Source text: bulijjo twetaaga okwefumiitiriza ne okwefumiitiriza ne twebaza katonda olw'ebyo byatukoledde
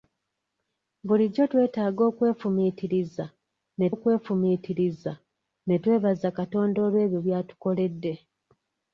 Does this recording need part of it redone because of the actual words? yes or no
no